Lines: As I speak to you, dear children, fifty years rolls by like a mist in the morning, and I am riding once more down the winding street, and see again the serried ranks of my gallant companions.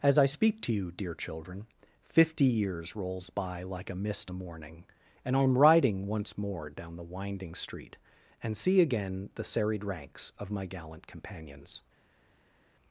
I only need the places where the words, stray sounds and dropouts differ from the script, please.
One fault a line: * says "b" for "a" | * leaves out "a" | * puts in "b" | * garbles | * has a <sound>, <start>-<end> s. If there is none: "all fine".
* leaves out "in"